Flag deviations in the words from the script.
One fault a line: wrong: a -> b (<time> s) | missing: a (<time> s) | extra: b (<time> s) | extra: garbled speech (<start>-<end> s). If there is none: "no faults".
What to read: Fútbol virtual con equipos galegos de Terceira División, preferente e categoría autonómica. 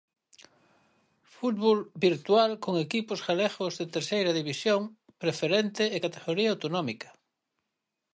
no faults